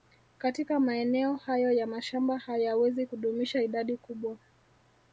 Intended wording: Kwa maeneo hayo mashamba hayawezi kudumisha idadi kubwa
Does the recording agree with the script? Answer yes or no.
no